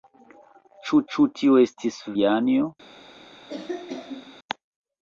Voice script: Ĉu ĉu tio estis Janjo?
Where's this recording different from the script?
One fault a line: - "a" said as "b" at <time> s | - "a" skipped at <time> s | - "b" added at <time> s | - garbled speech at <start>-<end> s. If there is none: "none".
none